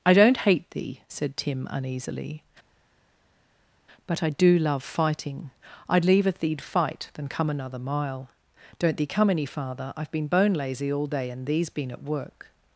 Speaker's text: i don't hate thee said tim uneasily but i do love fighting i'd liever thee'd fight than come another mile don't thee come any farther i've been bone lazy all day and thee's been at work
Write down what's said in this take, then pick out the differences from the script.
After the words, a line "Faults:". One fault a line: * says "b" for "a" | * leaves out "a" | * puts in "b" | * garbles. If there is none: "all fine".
i don't hate thee said tim uneasily but i do love fighting i'd liever thee'd fight than come another mile don't thee come any farther i've been bone lazy all day and thee's been at work
Faults:
all fine